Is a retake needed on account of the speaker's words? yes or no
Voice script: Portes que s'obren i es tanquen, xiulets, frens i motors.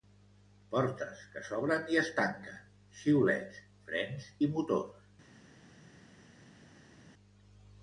no